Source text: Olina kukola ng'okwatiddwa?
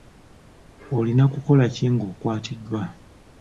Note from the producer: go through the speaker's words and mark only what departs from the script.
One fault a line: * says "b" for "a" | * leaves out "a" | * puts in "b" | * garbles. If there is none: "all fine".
* puts in "ki"